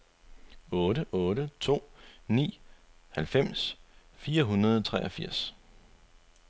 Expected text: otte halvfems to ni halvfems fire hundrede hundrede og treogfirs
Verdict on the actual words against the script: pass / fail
fail